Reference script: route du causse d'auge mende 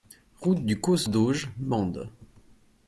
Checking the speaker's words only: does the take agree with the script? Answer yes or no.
yes